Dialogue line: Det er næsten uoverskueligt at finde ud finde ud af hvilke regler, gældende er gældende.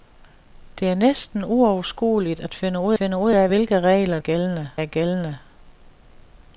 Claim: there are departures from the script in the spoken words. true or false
false